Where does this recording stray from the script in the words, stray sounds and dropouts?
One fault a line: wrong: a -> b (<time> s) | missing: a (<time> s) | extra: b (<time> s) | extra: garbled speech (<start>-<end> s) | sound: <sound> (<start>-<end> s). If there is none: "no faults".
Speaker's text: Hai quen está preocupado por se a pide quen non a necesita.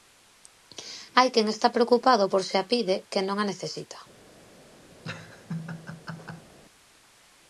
sound: laugh (5.0-6.5 s)